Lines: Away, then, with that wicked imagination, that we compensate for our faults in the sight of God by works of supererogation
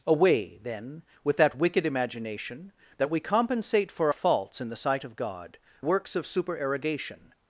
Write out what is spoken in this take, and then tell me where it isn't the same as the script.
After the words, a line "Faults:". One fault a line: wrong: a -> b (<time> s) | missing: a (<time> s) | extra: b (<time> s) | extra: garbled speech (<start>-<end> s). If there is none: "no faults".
Away, then, with that wicked imagination, that we compensate for faults in the sight of God works of supererogation
Faults:
missing: our (4.1 s)
missing: by (5.6 s)